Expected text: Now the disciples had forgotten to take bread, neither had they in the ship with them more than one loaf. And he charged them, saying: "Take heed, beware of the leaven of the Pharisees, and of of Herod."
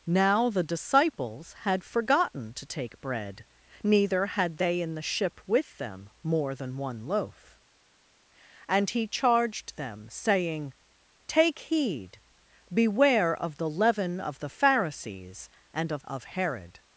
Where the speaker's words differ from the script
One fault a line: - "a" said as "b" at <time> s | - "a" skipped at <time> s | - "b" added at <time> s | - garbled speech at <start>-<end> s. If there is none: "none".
none